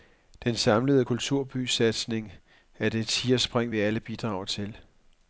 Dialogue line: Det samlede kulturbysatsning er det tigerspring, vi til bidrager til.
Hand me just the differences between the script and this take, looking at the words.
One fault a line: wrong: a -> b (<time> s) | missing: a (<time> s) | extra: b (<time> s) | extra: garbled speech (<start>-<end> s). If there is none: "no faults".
wrong: Det -> Den (0.4 s)
wrong: til -> alle (3.8 s)